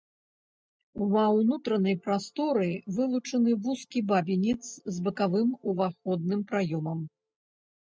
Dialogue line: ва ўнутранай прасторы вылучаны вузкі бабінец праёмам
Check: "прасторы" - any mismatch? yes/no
no